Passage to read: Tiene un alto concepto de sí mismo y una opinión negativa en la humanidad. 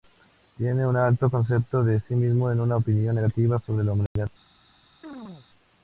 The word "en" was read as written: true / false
false